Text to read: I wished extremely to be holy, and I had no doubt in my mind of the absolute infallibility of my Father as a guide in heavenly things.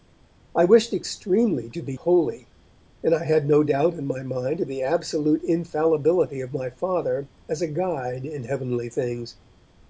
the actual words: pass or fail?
pass